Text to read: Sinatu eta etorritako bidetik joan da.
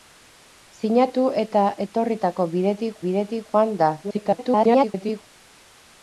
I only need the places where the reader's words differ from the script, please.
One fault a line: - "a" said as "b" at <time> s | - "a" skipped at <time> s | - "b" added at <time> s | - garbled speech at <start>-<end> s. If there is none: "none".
- "bidetik" added at 3.1 s
- garbled speech at 4.0-5.2 s